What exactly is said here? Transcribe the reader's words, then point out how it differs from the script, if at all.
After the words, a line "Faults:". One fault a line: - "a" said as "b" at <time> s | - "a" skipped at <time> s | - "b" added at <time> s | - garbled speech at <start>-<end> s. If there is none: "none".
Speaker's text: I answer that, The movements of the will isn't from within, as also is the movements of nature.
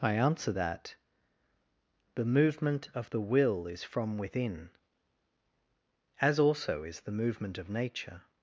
I answer that, The movement of the will is from within, as also is the movement of nature.
Faults:
- "movements" said as "movement" at 2.2 s
- "isn't" said as "is" at 3.7 s
- "movements" said as "movement" at 7.1 s